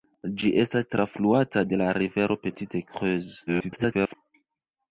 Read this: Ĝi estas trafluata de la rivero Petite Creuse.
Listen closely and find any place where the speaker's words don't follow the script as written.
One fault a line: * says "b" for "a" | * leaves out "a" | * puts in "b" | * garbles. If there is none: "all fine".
* garbles